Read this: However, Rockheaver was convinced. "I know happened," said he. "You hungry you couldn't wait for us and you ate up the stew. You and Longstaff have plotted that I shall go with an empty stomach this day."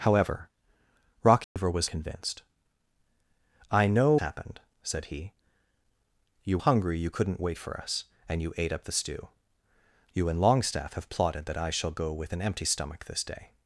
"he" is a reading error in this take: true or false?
false